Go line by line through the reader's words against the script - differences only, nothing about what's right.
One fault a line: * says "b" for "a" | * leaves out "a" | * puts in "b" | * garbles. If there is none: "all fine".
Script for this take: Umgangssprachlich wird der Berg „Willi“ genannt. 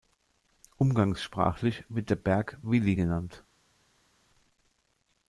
all fine